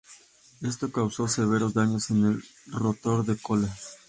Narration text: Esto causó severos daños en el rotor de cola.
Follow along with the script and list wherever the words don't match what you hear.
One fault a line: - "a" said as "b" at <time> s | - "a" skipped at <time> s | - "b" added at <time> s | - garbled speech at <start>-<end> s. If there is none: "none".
none